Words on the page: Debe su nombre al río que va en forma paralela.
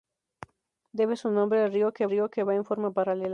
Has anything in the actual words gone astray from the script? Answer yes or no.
yes